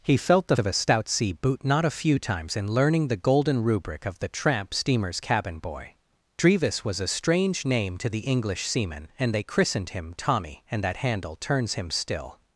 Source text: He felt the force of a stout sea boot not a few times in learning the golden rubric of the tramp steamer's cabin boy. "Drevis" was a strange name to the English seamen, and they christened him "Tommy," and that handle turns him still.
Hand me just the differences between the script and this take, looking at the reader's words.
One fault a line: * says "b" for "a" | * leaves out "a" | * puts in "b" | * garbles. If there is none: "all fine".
* leaves out "force"